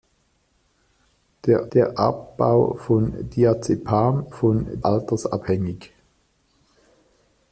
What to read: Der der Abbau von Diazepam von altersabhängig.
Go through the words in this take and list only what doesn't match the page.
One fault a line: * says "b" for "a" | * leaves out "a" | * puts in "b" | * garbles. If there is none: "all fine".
all fine